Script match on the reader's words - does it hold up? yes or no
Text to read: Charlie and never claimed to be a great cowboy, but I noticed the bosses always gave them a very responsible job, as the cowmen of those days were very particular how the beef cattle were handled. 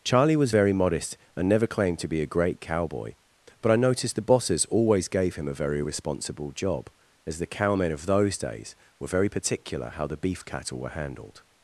no